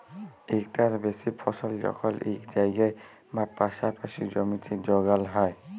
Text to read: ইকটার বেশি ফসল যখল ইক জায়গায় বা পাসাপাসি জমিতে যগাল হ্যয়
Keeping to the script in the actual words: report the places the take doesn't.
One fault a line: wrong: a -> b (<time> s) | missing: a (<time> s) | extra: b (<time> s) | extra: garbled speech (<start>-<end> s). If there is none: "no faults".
no faults